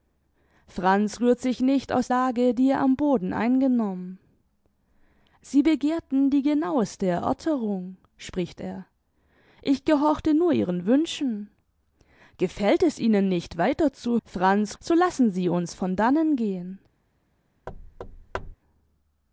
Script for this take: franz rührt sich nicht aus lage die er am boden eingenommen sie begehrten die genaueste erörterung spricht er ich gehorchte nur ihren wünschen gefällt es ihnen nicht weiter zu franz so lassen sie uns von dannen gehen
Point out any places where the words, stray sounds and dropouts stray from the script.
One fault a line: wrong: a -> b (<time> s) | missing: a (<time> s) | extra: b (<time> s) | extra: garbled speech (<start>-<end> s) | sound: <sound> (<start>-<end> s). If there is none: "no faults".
sound: thud (17.7-18.6 s)